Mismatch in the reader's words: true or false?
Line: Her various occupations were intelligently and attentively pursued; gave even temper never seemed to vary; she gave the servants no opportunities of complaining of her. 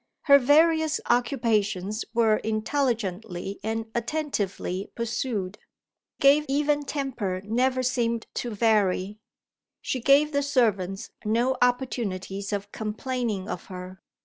false